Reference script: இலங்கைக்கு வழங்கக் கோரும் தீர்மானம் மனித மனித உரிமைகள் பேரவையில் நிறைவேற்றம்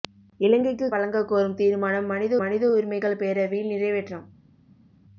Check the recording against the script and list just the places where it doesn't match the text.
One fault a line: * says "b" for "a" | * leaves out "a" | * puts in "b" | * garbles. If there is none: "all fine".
all fine